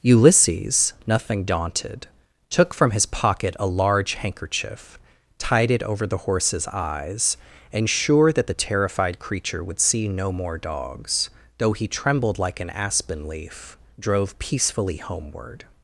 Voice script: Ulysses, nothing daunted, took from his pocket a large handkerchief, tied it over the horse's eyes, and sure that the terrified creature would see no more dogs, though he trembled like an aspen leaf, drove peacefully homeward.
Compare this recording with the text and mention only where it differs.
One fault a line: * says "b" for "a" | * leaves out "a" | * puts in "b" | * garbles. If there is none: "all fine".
all fine